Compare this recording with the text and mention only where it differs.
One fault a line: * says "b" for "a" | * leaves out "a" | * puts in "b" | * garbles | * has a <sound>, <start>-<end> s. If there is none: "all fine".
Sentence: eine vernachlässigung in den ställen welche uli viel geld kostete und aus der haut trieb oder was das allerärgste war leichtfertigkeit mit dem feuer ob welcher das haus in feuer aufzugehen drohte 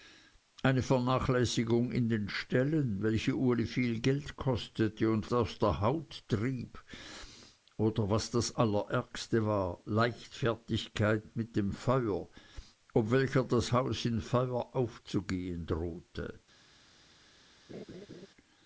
* has a laugh, 17.7-18.3 s